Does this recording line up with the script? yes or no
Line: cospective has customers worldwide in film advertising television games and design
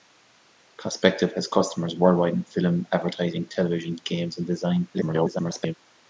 no